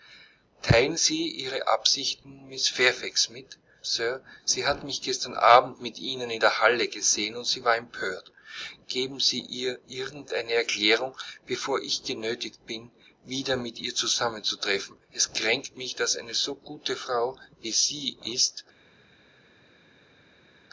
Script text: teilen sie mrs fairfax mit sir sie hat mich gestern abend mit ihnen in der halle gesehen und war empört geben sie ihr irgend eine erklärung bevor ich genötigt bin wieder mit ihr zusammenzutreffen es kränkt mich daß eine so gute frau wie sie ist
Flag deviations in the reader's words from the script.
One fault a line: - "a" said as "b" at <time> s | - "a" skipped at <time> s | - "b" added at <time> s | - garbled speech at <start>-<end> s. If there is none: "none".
- "ihre absichten" added at 1.3 s
- "sie" added at 7.5 s